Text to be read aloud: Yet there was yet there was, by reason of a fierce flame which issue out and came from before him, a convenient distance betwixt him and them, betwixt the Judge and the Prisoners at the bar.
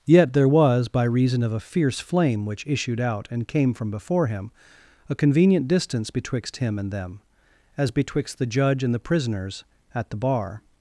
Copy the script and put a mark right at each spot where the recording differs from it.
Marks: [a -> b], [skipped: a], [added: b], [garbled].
Yet there was [skipped: yet there was,] by reason of a fierce flame which [issue -> issued] out and came from before him, a convenient distance betwixt him and them, [added: as] betwixt the Judge and the Prisoners at the bar.